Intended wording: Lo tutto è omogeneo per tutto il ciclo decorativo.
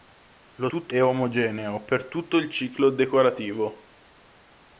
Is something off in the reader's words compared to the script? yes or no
no